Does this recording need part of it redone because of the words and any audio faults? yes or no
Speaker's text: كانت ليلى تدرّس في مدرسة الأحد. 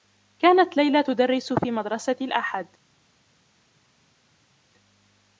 no